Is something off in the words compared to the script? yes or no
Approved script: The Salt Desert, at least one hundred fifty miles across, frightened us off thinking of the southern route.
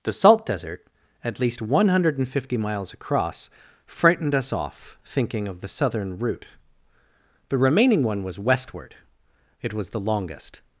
yes